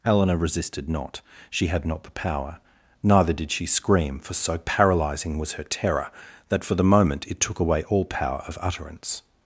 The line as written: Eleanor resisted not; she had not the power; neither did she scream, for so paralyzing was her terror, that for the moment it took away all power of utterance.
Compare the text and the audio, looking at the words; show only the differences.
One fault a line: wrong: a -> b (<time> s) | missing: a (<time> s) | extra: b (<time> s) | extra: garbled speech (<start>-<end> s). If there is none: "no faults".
no faults